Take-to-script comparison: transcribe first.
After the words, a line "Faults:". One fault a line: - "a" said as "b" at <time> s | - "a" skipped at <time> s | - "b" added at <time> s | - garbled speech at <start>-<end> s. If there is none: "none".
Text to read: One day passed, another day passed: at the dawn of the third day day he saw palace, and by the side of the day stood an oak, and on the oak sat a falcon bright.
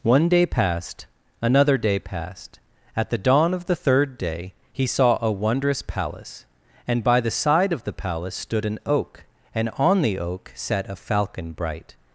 One day passed, another day passed: at the dawn of the third day he saw a wondrous palace, and by the side of the palace stood an oak, and on the oak sat a falcon bright.
Faults:
- "day" skipped at 4.5 s
- "a wondrous" added at 5.2 s
- "day" said as "palace" at 7.9 s